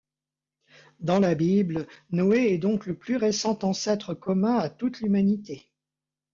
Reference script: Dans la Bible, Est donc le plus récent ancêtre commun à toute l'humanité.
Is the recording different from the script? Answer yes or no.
yes